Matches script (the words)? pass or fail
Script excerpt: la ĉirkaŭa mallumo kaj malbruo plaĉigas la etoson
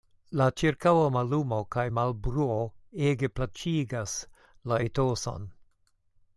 fail